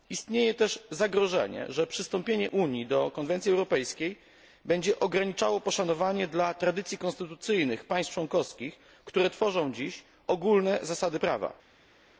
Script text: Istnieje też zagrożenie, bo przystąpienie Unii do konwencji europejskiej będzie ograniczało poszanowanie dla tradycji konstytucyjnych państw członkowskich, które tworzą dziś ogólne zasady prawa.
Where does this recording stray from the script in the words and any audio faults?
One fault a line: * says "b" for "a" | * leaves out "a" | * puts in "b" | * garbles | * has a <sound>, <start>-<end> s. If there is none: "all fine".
* says "że" for "bo"